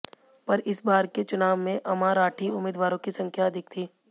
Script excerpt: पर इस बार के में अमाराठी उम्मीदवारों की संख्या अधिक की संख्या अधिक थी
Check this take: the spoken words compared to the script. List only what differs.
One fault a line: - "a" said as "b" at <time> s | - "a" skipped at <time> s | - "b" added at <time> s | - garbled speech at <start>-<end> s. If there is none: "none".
- "चुनाव" added at 1.2 s
- "की संख्या अधिक" skipped at 3.7 s